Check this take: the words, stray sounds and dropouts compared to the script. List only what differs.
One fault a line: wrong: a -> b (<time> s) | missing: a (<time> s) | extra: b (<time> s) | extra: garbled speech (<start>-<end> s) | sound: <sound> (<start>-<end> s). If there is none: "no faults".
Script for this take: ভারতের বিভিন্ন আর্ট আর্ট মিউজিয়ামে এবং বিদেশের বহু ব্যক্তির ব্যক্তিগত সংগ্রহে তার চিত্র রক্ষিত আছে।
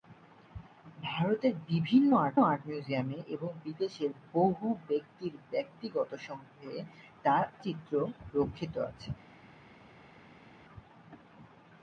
no faults